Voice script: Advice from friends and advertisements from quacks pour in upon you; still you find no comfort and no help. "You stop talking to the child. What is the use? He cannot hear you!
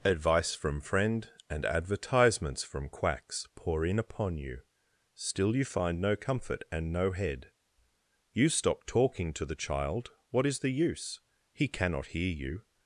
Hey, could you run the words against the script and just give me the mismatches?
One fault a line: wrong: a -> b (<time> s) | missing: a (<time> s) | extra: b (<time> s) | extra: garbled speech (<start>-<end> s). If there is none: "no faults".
wrong: friends -> friend (0.8 s)
wrong: help -> head (7.1 s)